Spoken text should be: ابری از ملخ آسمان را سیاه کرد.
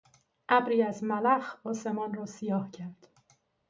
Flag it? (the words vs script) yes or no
no